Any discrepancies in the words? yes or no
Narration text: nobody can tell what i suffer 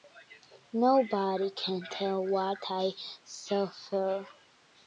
no